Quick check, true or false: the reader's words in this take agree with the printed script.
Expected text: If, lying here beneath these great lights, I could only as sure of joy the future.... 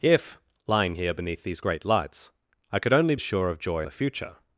true